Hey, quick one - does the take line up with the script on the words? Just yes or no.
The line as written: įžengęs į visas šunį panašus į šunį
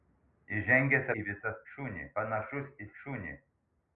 yes